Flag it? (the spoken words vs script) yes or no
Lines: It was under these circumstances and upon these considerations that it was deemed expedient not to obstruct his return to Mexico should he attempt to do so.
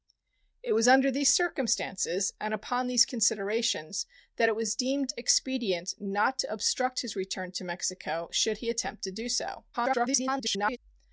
yes